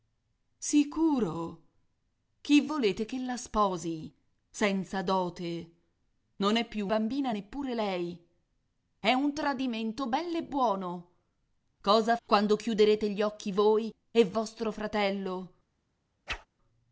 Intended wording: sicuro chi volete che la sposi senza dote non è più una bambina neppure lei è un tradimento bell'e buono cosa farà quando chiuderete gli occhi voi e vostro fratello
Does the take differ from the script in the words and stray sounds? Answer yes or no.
yes